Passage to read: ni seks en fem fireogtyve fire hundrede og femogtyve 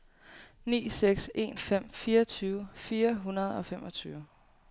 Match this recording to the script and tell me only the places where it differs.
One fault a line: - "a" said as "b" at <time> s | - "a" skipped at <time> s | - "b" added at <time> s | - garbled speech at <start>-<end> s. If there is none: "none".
none